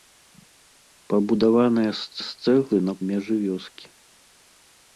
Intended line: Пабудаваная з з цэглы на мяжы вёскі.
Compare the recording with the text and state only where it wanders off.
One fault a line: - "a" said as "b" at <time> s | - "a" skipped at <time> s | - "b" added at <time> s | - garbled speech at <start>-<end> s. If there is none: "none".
none